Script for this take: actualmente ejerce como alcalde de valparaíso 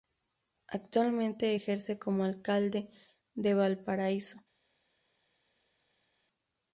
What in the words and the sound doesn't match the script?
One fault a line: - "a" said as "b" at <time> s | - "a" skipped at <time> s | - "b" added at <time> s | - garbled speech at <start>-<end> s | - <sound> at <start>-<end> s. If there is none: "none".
none